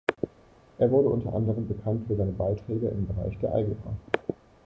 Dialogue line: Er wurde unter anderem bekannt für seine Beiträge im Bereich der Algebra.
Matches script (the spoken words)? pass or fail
pass